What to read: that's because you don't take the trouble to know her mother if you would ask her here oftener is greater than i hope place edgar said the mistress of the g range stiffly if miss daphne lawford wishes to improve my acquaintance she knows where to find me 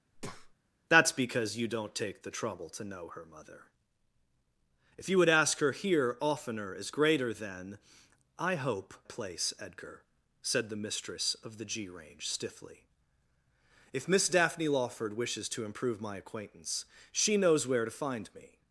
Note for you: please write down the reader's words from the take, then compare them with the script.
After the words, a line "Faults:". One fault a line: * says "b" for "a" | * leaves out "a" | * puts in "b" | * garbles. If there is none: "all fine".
that's because you don't take the trouble to know her mother if you would ask her here oftener is greater than i hope place edgar said the mistress of the g range stiffly if miss daphne lawford wishes to improve my acquaintance she knows where to find me
Faults:
all fine